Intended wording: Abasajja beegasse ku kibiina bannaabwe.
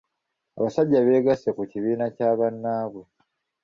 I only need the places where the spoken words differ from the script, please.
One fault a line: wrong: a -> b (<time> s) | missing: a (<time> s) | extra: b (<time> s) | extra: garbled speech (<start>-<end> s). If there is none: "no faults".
extra: kya (2.1 s)